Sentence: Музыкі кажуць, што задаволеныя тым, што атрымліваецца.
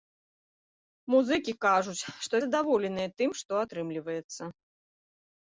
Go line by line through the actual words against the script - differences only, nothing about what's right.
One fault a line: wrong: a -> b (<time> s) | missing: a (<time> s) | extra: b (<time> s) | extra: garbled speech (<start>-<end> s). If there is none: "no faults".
no faults